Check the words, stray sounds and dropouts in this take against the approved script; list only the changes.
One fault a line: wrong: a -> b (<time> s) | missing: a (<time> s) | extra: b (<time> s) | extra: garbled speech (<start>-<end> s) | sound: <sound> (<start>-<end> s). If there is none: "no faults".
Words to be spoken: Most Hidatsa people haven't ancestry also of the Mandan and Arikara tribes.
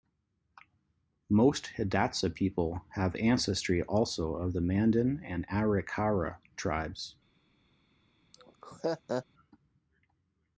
wrong: haven't -> have (2.9 s)
sound: laugh (8.3-9.3 s)